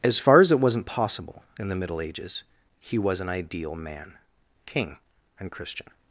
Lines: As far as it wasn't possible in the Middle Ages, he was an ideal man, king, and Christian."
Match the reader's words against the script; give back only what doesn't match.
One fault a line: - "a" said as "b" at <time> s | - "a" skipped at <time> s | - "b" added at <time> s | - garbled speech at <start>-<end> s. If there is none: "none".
none